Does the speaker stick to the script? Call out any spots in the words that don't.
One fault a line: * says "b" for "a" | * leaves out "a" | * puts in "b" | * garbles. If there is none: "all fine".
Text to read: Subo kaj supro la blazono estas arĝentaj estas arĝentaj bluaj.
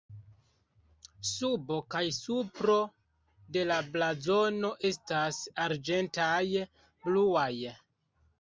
* puts in "de"
* leaves out "estas arĝentaj"